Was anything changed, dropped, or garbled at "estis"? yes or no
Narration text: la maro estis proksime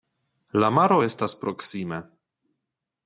yes